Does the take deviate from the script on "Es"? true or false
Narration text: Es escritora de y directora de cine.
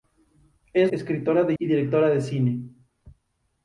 false